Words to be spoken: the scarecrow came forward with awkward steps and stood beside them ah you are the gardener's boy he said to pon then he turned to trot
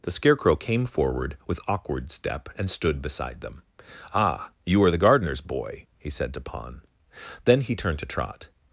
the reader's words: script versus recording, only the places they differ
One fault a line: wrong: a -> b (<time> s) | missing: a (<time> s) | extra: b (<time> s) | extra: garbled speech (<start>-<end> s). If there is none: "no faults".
wrong: steps -> step (2.1 s)